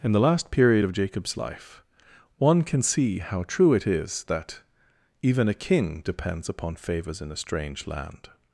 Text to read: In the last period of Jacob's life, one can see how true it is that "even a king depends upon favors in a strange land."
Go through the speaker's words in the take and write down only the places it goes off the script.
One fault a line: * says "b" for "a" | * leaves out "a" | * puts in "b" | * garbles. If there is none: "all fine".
all fine